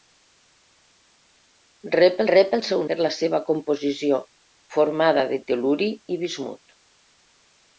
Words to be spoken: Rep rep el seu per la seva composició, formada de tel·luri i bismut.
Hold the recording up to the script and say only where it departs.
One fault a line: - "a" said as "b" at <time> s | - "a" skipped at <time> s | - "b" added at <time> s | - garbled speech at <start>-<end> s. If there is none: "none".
none